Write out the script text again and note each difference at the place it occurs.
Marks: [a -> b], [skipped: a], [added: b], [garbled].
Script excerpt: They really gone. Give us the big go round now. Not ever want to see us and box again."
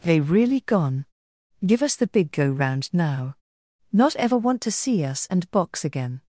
They really gone. Give us the big go round now. Not ever want to see us and box again."